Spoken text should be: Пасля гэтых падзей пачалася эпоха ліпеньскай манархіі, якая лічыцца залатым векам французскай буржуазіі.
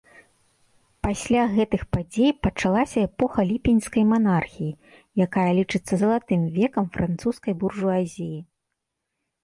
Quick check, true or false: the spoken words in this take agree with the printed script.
true